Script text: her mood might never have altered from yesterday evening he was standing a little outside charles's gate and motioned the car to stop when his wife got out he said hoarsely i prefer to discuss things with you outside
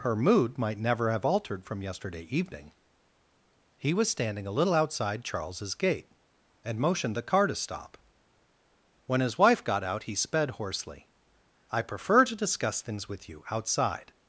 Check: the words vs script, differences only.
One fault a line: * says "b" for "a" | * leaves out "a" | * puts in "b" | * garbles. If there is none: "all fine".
* says "sped" for "said"